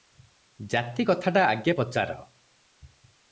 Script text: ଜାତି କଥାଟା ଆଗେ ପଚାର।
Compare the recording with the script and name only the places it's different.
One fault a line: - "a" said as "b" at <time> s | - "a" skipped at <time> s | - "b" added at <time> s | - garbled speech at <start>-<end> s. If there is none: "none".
none